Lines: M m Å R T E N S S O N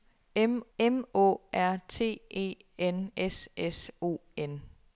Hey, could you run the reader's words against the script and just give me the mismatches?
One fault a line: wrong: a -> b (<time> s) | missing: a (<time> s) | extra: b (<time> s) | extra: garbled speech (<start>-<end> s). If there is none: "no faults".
no faults